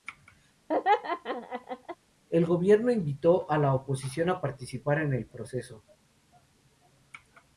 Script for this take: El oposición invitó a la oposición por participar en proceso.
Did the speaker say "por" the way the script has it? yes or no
no